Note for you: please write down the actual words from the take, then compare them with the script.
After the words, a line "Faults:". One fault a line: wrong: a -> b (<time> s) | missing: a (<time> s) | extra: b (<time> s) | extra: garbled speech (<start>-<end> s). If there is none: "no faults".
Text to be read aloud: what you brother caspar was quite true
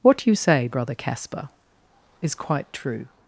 what you say brother caspar is quite true
Faults:
extra: say (0.3 s)
wrong: was -> is (2.2 s)